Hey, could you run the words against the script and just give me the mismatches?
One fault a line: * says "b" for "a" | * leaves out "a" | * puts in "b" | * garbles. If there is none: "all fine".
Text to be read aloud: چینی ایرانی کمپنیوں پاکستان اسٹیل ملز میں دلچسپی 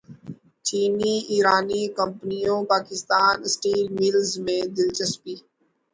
all fine